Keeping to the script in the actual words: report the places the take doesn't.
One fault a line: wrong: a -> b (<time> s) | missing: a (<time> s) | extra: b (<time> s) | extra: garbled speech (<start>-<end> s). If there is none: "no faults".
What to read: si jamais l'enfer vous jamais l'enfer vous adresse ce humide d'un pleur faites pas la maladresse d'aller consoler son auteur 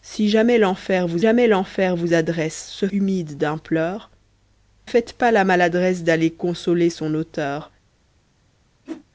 no faults